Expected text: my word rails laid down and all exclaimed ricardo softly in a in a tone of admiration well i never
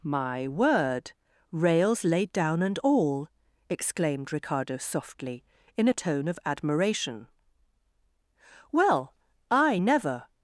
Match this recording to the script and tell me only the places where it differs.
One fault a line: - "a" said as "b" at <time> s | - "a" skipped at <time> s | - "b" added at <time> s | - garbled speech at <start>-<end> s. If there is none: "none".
- "in a" skipped at 6.0 s